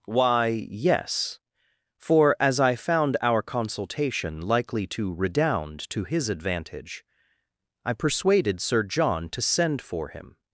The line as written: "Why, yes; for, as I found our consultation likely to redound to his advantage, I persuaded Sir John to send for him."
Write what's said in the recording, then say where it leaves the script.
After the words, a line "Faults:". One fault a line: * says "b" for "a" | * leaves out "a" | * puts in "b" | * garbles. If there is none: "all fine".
"Why, yes; for, as I found our consultation likely to redound to his advantage, I persuaded Sir John to send for him."
Faults:
all fine